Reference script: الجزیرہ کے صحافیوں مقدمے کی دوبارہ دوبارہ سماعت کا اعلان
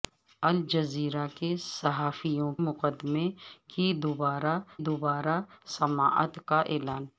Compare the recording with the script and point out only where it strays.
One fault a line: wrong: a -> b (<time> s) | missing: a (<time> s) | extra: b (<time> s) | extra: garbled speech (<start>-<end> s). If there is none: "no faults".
no faults